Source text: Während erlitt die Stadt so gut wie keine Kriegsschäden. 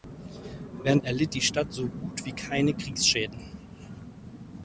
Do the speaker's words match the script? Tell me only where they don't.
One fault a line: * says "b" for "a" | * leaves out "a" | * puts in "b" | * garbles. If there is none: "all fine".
all fine